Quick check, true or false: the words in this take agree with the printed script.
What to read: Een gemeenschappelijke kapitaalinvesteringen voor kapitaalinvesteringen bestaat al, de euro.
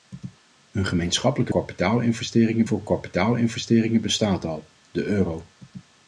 true